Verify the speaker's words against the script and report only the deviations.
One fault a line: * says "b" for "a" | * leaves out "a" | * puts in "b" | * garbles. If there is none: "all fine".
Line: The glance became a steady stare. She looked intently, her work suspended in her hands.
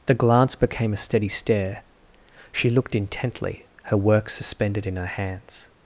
all fine